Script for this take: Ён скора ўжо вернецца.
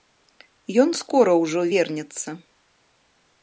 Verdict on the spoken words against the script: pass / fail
pass